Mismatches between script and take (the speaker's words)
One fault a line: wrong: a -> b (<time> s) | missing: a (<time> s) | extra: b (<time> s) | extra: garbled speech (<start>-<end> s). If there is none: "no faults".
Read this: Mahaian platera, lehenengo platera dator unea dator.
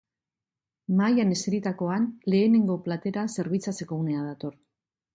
wrong: platera -> eseritakoan (1.4 s)
wrong: dator -> zerbitzatzeko (3.4 s)